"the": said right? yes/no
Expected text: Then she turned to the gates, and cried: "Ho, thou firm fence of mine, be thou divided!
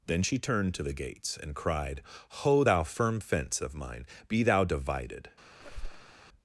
yes